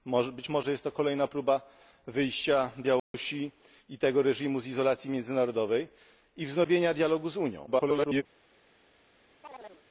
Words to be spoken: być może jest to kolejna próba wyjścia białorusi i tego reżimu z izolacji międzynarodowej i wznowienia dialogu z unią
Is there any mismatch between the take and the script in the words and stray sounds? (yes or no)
yes